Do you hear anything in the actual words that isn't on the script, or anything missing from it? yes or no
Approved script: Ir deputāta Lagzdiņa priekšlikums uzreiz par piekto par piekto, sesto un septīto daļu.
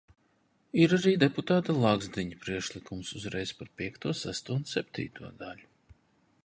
yes